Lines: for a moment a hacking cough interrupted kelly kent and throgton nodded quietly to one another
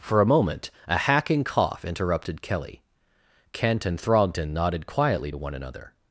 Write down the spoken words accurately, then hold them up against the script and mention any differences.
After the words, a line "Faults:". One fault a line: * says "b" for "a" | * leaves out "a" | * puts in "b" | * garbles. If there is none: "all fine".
for a moment a hacking cough interrupted kelly kent and throgton nodded quietly to one another
Faults:
all fine